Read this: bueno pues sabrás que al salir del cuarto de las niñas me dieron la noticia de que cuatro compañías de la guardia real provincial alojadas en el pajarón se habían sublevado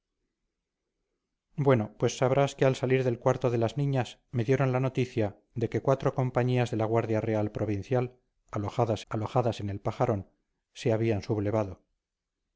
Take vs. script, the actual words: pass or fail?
fail